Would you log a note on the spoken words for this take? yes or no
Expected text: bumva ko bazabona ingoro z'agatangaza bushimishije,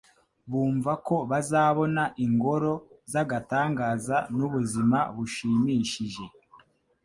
yes